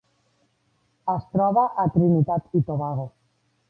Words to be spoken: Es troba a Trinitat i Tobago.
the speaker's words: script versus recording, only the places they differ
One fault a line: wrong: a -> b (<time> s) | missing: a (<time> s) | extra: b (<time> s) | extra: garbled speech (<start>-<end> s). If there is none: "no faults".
no faults